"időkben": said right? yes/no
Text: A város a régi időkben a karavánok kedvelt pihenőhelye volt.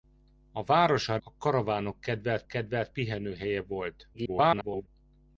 no